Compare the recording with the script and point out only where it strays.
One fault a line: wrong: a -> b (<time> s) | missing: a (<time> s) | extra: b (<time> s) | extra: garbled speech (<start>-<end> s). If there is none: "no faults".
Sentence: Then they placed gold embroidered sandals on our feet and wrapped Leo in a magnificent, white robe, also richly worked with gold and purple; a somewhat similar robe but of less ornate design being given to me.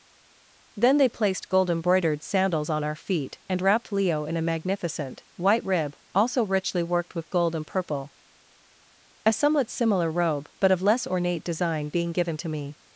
wrong: robe -> rib (5.6 s)